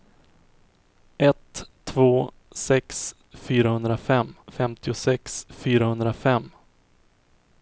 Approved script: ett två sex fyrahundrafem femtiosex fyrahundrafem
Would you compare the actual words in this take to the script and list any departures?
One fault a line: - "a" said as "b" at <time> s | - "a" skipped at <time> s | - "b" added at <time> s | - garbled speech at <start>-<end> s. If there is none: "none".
none